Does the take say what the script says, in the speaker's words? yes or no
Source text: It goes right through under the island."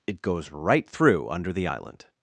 yes